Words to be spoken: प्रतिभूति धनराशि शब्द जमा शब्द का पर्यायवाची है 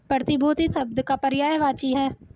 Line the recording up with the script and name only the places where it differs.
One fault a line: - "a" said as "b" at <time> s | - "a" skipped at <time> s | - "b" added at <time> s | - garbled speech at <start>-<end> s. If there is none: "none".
- "धनराशि शब्द जमा" skipped at 0.7 s